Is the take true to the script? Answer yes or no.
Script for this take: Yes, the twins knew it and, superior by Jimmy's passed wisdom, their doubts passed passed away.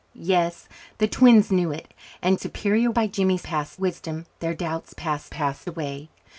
yes